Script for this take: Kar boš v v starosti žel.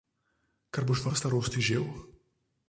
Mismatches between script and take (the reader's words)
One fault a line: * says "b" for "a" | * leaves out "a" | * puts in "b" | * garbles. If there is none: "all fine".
all fine